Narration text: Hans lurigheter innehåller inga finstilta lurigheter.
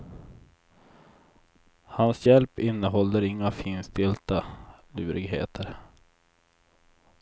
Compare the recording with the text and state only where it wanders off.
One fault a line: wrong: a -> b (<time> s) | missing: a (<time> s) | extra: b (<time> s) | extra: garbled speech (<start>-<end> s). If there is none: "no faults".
wrong: lurigheter -> hjälp (2.2 s)